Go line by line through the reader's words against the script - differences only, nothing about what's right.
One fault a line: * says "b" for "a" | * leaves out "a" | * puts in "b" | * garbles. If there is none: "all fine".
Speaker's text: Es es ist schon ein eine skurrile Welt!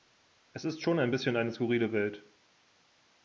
* leaves out "es"
* puts in "bisschen"